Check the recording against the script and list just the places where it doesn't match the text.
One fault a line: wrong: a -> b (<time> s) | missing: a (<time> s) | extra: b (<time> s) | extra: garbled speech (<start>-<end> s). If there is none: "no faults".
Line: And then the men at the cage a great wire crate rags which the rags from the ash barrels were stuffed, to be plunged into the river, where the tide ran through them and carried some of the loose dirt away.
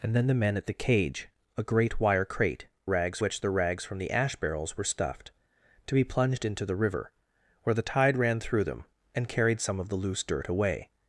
no faults